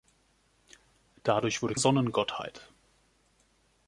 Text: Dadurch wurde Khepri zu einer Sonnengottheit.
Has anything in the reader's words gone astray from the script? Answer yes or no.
yes